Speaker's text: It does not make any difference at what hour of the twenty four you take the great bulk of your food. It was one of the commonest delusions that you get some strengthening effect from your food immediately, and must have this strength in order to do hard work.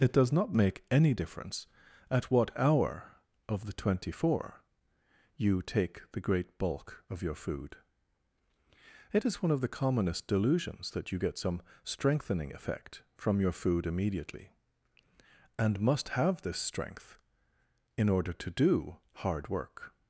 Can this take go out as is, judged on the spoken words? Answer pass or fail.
fail